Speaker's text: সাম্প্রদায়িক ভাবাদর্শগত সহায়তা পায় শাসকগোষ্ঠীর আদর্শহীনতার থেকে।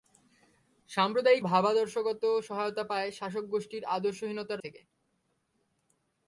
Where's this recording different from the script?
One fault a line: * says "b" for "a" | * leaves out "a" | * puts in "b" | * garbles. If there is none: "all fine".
all fine